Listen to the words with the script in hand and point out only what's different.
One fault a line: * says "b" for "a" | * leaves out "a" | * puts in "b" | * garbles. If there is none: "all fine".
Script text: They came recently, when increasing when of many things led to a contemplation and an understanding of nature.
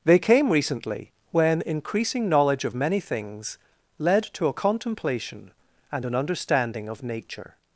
* says "knowledge" for "when"